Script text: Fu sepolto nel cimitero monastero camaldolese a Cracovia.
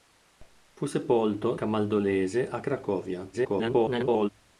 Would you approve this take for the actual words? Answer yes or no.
no